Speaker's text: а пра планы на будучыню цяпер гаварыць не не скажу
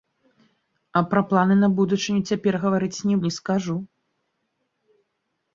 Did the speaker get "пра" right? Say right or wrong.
right